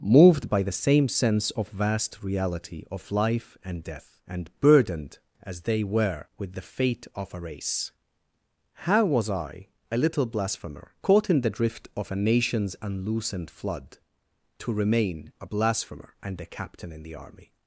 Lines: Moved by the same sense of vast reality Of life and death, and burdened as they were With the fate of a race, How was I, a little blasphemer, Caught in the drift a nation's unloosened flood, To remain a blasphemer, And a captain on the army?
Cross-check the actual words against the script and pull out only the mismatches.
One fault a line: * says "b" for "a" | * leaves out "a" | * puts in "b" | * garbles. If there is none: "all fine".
* puts in "of"
* says "in" for "on"